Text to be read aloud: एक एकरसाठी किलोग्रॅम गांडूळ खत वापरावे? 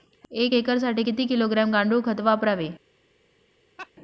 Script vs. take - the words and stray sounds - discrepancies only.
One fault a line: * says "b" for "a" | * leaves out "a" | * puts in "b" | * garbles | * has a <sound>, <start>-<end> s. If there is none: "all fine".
* puts in "किती"
* has a laugh, 3.8-3.9 s